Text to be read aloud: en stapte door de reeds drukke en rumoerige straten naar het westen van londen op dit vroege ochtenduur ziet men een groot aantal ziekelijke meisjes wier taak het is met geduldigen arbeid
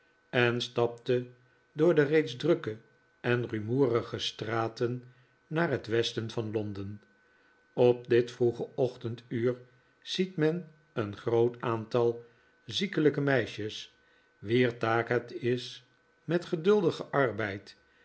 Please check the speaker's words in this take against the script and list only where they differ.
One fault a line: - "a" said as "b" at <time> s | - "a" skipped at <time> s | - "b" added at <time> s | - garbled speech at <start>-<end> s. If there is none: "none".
none